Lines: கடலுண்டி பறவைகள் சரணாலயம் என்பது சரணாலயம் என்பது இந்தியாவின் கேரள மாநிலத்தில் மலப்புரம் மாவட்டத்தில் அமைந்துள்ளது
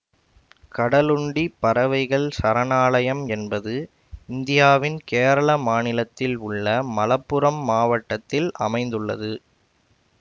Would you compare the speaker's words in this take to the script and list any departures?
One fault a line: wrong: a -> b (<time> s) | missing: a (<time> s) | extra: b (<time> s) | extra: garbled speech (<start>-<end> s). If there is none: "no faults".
missing: சரணாலயம் என்பது (3.7 s)
extra: உள்ள (6.5 s)